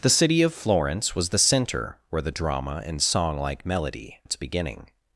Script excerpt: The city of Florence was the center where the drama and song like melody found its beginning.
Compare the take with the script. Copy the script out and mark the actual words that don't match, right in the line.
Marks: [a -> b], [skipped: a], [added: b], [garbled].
The city of Florence was the center where the drama and song like melody [skipped: found] its beginning.